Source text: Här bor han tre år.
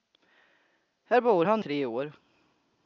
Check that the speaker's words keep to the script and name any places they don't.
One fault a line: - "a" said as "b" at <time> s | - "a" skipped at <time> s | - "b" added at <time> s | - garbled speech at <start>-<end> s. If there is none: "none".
none